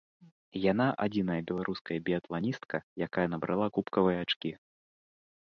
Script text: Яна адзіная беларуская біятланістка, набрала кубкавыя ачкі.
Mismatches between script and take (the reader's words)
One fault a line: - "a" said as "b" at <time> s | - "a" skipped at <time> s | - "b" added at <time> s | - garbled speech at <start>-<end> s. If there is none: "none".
- "якая" added at 3.1 s